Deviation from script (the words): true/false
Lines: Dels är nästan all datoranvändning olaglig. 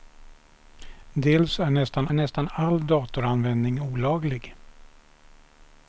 true